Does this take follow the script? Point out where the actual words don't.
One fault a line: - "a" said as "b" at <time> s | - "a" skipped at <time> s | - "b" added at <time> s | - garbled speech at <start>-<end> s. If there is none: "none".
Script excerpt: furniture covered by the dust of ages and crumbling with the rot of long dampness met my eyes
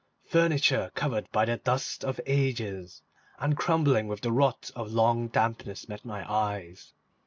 none